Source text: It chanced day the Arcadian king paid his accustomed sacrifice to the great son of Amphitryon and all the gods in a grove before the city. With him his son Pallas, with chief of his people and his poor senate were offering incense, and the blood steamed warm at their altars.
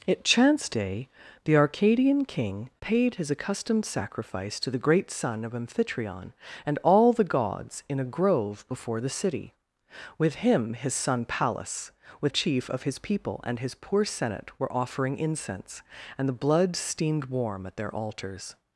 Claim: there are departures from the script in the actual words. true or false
false